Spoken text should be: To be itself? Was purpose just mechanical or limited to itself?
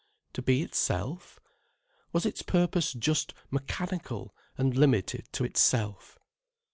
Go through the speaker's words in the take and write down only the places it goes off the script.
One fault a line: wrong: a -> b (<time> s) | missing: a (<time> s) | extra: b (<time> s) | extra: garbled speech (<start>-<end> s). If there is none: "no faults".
extra: its (2.2 s)
wrong: or -> and (4.6 s)